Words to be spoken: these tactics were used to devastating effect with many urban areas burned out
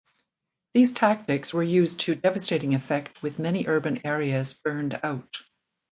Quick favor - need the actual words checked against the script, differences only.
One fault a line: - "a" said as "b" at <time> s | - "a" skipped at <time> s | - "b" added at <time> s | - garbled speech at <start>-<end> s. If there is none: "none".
none